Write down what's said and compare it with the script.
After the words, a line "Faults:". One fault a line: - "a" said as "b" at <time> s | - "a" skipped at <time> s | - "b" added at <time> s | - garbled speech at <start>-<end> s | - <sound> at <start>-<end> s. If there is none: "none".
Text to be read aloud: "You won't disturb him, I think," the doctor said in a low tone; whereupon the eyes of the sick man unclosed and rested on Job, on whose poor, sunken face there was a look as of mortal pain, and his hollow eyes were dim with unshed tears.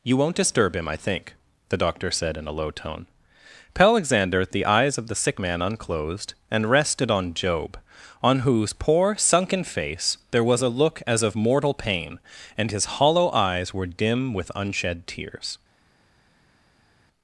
"You won't disturb him, I think," the doctor said in a low tone; alexander the eyes of the sick man unclosed and rested on Job, on whose poor, sunken face there was a look as of mortal pain, and his hollow eyes were dim with unshed tears.
Faults:
- "whereupon" said as "alexander" at 3.8 s